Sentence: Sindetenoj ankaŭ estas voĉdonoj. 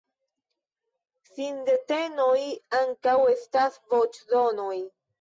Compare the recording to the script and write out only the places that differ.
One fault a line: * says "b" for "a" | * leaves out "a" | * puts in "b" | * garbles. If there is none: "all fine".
all fine